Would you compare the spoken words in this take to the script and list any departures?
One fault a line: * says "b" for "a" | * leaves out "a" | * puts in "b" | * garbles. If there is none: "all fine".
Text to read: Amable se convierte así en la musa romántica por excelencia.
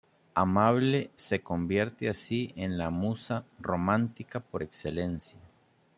all fine